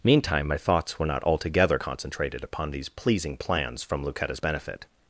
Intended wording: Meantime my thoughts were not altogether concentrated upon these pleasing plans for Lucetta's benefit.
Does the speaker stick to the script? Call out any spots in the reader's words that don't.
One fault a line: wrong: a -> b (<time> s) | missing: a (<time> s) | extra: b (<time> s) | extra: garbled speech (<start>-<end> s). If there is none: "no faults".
wrong: for -> from (3.8 s)